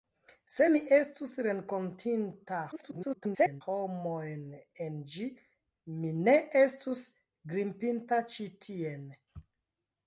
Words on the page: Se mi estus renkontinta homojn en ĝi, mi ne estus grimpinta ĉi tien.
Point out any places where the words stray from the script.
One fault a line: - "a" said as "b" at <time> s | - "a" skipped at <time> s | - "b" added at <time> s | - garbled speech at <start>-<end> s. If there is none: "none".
- garbled speech at 2.7-3.6 s